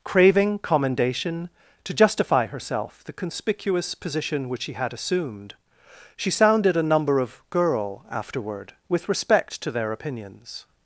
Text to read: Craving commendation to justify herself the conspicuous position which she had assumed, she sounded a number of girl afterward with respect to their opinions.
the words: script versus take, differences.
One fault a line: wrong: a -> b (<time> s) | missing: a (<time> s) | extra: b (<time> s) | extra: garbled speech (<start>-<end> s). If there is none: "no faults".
no faults